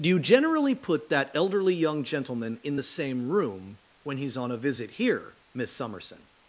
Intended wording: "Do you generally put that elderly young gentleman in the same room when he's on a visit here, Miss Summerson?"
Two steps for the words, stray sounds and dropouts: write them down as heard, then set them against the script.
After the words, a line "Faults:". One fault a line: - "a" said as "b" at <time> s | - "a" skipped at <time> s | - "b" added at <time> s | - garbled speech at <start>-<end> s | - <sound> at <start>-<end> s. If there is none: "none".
"Do you generally put that elderly young gentleman in the same room when he's on a visit here, Miss Summerson?"
Faults:
none